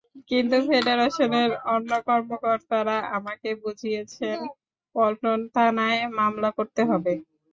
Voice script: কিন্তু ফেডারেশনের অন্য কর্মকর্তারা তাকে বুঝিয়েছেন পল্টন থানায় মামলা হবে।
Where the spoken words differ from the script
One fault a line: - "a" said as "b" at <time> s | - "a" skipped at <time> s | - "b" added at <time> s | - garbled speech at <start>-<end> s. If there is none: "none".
- "তাকে" said as "আমাকে" at 3.2 s
- "করতে" added at 6.6 s